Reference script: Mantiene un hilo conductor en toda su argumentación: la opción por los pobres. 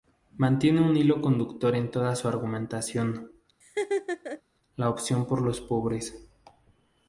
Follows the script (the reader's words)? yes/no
yes